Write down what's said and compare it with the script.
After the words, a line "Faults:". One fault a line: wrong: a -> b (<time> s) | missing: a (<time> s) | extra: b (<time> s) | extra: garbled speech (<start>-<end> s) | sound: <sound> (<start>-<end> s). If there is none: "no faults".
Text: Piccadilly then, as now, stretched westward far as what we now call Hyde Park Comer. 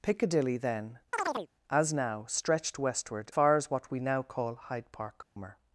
Piccadilly then, as now, stretched westward far as what we now call Hyde Park Comer.
Faults:
sound: chirp (1.1-1.5 s)
sound: dropout (5.2-5.4 s)